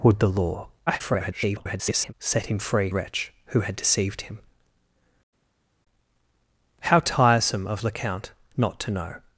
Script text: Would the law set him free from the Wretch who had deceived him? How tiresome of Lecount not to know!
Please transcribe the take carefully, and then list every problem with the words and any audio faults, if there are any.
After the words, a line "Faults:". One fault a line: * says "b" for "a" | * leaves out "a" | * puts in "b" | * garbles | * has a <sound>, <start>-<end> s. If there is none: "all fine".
Would the law [garbled] set him free Wretch who had deceived him? How tiresome of Lecount not to know!
Faults:
* garbles
* leaves out "from the"